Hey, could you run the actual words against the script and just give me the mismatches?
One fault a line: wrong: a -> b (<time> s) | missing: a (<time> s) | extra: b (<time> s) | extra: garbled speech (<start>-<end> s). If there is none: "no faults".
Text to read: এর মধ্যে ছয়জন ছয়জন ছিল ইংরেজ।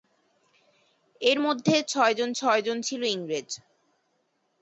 no faults